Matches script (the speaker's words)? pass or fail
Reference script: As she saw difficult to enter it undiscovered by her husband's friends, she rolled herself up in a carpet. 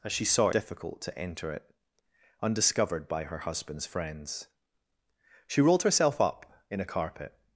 pass